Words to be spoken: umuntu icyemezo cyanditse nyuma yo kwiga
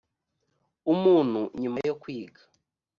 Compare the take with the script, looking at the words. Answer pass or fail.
fail